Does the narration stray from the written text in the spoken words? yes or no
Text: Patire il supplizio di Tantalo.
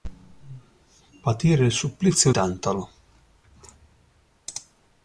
yes